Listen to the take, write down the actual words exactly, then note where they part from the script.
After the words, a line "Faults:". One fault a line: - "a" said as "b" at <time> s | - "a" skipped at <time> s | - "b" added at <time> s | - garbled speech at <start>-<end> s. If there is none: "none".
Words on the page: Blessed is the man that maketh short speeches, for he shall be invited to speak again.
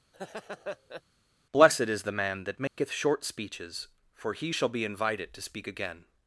Blessed is the man that maketh short speeches, for he shall be invited to speak again.
Faults:
none